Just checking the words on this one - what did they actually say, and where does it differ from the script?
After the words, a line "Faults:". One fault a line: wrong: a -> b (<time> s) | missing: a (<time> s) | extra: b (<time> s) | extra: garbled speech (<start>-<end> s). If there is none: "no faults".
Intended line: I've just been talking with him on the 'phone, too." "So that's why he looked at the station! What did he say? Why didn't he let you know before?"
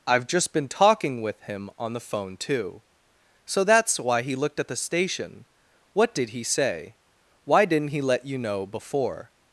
I've just been talking with him on the 'phone, too." "So that's why he looked at the station! What did he say? Why didn't he let you know before?"
Faults:
no faults